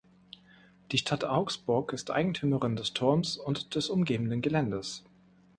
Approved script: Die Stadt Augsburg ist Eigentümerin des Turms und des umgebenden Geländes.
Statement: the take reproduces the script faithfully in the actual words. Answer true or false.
true